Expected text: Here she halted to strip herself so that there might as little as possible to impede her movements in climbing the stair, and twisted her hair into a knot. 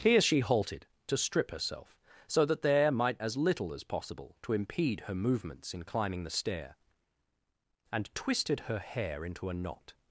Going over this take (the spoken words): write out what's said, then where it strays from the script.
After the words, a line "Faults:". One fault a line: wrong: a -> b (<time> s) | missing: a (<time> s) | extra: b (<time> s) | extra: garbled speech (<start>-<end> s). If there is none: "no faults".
Here she halted to strip herself so that there might as little as possible to impede her movements in climbing the stair, and twisted her hair into a knot.
Faults:
no faults